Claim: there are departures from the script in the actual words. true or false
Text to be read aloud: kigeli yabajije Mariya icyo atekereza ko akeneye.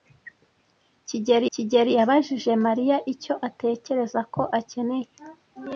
true